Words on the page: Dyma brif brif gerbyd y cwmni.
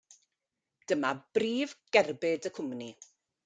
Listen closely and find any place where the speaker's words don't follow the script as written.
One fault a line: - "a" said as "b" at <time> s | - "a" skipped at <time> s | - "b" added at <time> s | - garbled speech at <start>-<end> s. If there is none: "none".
- "brif" skipped at 1.8 s